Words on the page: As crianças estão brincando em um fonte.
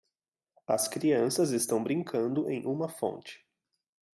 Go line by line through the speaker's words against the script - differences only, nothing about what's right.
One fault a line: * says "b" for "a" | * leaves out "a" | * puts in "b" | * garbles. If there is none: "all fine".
* says "uma" for "um"